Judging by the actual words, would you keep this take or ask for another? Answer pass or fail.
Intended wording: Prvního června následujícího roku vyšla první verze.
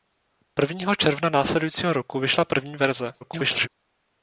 fail